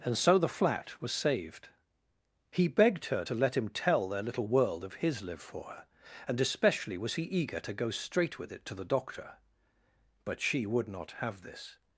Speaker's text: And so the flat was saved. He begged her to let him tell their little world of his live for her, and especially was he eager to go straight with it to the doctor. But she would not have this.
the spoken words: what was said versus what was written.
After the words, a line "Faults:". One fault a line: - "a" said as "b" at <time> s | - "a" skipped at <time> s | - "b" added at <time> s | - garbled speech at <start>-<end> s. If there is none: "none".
And so the flat was saved. He begged her to let him tell their little world of his live for her, and especially was he eager to go straight with it to the doctor. But she would not have this.
Faults:
none